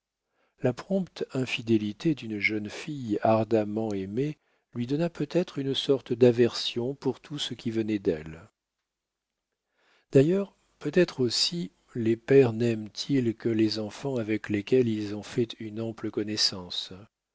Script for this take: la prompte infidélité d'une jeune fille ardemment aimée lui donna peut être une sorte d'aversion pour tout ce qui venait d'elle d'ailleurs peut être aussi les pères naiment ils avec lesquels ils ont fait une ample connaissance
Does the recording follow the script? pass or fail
fail